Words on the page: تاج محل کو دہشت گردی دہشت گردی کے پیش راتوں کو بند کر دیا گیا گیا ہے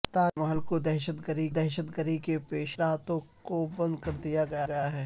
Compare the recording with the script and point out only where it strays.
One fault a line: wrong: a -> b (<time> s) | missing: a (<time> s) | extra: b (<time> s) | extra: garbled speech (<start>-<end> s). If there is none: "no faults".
no faults